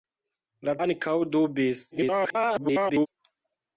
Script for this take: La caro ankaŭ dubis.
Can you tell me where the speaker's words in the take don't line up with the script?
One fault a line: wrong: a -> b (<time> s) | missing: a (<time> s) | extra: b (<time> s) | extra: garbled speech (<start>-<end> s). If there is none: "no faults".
missing: caro (0.7 s)
extra: garbled speech (1.9-3.1 s)